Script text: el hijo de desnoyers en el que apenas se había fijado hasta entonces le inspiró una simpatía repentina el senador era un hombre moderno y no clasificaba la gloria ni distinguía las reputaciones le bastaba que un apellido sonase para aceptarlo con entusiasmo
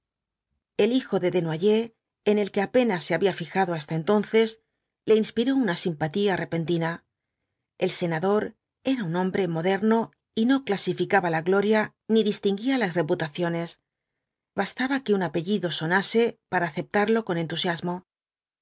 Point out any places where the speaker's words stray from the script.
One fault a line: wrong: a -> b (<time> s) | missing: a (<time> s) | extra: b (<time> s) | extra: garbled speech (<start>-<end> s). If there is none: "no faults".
missing: le (13.8 s)